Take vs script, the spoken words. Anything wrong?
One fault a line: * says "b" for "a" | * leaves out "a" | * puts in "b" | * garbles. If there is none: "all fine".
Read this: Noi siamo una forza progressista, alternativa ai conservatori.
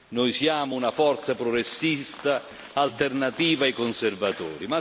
all fine